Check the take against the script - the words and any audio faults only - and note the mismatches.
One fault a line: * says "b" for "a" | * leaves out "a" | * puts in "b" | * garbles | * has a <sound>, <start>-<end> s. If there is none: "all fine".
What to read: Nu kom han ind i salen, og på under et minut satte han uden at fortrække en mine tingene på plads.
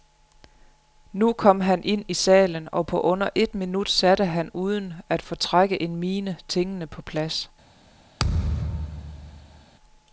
* has a thud, 8.2-9.6 s